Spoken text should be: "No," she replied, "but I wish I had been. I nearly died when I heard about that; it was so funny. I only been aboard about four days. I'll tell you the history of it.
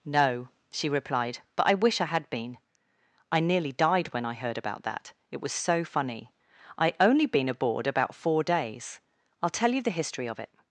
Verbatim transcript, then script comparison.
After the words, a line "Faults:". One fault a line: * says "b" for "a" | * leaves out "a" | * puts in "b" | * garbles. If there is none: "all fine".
"No," she replied, "but I wish I had been. I nearly died when I heard about that; it was so funny. I only been aboard about four days. I'll tell you the history of it.
Faults:
all fine